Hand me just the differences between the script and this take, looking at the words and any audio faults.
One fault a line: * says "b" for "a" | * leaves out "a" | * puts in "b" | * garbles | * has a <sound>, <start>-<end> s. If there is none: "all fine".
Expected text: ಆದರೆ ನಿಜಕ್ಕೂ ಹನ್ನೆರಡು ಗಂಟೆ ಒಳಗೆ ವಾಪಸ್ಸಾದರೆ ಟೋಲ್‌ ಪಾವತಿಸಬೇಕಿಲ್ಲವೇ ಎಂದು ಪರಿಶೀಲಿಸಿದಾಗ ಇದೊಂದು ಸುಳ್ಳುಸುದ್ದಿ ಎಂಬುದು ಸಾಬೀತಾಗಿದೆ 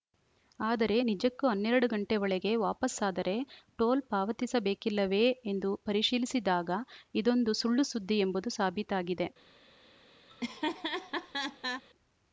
* has a laugh, 10.3-11.8 s